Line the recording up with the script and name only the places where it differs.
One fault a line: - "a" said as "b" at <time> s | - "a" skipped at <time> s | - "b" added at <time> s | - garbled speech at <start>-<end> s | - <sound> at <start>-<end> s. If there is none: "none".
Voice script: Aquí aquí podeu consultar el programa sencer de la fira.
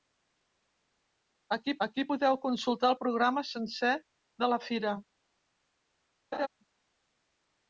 - laugh at 6.3-6.5 s